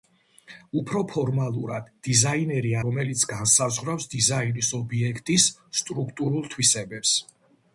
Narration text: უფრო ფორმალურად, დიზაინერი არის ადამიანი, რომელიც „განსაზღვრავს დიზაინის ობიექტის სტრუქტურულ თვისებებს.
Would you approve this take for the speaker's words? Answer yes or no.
no